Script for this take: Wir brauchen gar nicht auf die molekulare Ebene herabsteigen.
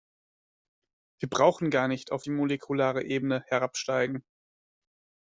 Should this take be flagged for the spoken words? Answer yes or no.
no